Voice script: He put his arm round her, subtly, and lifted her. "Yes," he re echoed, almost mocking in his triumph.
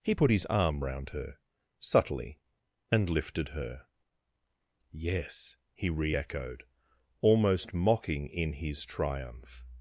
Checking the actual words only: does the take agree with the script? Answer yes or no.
yes